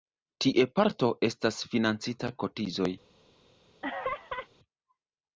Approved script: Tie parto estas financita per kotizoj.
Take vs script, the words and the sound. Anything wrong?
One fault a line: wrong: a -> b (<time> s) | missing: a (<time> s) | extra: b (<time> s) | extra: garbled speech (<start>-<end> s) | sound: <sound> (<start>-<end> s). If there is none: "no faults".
missing: per (2.3 s)
sound: laugh (3.8-4.5 s)